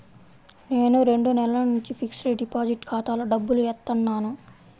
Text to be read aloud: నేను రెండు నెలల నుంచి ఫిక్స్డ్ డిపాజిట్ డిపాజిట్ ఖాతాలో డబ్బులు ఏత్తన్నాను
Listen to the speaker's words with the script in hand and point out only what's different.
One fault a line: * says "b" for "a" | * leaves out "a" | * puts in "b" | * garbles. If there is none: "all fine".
* leaves out "డిపాజిట్"